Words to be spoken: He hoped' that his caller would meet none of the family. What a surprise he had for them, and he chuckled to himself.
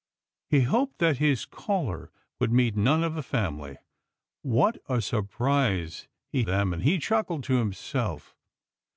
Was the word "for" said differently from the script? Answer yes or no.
yes